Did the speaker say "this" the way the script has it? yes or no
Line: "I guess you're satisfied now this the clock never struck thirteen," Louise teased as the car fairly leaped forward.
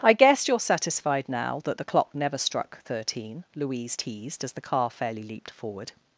no